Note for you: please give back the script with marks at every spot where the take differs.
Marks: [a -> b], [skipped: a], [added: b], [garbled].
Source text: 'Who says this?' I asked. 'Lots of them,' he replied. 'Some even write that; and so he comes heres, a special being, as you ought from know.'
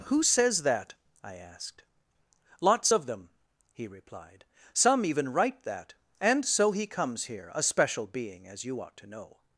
'Who says [this?' -> that] I asked. 'Lots of them,' he replied. 'Some even write that; and so he comes [heres, -> here] a special being, as you ought [from -> to] know.'